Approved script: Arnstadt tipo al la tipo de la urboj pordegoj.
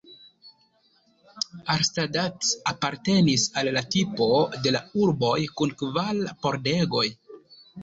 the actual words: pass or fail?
fail